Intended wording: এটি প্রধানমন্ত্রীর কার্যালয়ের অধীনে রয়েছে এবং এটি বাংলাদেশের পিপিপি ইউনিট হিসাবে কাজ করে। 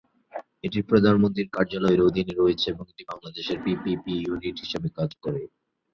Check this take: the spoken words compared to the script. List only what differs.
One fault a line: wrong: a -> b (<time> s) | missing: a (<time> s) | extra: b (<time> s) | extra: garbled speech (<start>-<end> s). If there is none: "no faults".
no faults